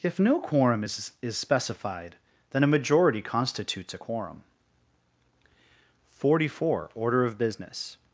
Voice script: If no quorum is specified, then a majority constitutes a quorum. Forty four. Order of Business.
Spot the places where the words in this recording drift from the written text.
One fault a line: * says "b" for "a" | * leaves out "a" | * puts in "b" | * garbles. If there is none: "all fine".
* puts in "is"